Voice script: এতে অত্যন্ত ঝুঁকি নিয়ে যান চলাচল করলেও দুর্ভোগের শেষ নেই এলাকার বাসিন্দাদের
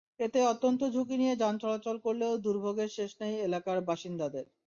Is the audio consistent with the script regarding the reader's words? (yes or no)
yes